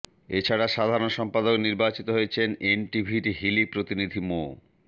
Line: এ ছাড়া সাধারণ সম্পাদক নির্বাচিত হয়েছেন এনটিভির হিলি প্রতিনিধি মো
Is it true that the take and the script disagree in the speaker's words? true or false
false